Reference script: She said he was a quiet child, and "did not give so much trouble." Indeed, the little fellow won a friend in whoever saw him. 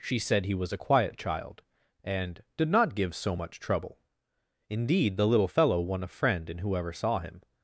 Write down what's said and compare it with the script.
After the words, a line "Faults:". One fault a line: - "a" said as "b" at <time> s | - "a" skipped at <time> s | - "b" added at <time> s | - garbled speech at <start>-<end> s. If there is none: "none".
She said he was a quiet child, and "did not give so much trouble." Indeed, the little fellow won a friend in whoever saw him.
Faults:
none